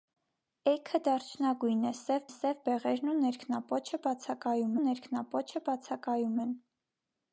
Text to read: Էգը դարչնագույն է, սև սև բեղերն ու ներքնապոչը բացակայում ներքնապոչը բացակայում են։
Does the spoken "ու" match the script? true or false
true